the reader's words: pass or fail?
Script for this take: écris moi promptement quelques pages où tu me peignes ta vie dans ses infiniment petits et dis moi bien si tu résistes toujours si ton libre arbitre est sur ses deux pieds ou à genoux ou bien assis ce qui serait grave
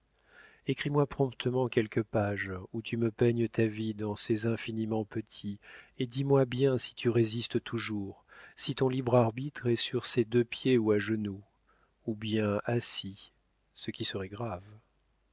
pass